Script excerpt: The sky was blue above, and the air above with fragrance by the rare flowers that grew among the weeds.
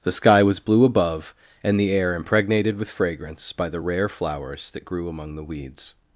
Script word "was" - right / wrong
right